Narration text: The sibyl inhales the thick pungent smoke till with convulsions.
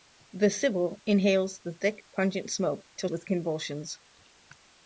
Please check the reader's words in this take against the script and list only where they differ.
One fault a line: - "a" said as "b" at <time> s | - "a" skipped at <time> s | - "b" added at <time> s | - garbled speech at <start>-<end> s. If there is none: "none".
none